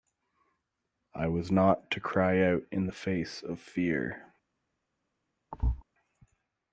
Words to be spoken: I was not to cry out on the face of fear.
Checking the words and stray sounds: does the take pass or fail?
fail